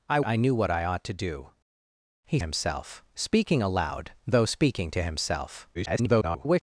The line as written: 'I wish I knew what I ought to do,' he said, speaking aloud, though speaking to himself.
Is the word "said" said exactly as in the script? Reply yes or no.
no